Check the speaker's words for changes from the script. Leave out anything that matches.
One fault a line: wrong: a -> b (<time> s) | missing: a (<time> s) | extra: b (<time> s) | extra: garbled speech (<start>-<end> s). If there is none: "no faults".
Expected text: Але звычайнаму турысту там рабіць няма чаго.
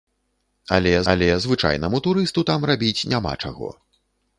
extra: але (1.1 s)